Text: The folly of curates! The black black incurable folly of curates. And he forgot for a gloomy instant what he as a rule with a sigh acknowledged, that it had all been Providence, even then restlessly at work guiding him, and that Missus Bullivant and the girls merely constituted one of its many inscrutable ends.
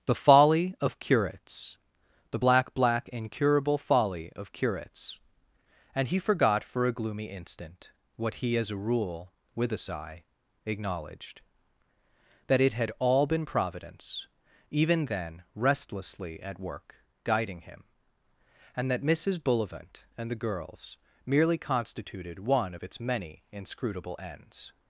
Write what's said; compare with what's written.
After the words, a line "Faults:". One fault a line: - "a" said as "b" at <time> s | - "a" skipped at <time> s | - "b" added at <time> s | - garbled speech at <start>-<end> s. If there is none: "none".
The folly of curates! The black black incurable folly of curates. And he forgot for a gloomy instant what he as a rule with a sigh acknowledged, that it had all been Providence, even then restlessly at work guiding him, and that Missus Bullivant and the girls merely constituted one of its many inscrutable ends.
Faults:
none